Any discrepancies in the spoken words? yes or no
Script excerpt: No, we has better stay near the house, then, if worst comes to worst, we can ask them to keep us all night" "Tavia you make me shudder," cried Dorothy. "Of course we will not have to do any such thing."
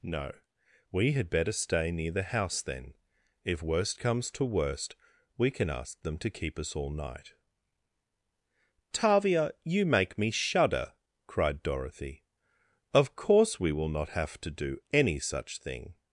yes